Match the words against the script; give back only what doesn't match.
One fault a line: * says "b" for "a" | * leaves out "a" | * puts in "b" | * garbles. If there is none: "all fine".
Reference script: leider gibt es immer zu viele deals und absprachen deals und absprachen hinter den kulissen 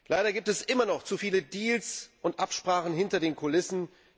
* puts in "noch"
* leaves out "deals und absprachen"